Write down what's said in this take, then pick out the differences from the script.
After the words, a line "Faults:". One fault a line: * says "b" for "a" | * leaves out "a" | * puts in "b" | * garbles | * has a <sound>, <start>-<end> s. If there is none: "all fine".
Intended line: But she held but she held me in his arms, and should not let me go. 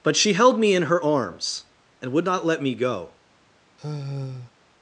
But she held me in her arms, and would not let me go.
Faults:
* leaves out "but she held"
* says "her" for "his"
* says "would" for "should"
* has a sigh, 3.8-4.5 s